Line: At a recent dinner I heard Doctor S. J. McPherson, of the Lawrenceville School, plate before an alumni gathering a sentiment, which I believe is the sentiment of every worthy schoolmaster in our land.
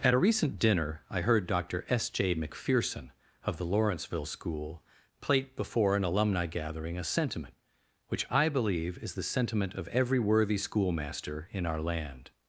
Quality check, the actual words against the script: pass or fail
pass